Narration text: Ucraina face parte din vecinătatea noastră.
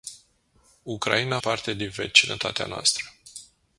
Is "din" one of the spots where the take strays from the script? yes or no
no